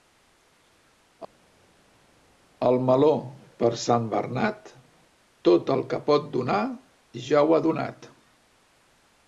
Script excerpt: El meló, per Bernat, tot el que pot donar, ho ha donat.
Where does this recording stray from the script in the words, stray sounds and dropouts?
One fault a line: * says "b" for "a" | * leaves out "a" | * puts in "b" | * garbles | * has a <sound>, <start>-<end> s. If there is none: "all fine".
* puts in "Sant"
* puts in "ja"